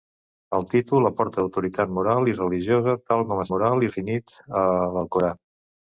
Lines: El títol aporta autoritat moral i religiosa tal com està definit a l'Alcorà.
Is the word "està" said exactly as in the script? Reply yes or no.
no